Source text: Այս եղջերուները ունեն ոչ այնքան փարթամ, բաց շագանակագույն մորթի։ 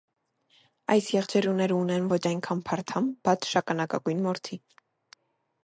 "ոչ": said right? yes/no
yes